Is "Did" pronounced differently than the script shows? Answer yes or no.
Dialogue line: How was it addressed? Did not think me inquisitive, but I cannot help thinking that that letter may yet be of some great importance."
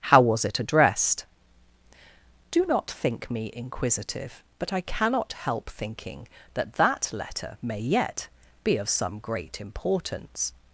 yes